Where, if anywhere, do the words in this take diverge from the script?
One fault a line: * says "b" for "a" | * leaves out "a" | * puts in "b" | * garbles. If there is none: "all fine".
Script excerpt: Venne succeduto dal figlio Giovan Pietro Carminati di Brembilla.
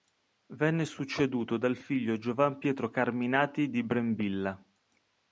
all fine